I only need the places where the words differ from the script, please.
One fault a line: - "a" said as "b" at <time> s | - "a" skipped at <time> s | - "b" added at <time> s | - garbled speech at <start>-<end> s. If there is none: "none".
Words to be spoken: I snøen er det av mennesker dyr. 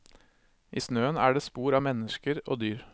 - "spor" added at 1.4 s
- "og" added at 2.4 s